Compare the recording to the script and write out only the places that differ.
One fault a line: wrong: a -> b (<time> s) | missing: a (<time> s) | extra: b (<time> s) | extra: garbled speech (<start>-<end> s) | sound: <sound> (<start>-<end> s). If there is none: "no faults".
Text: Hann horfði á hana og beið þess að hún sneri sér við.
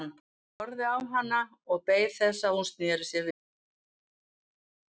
no faults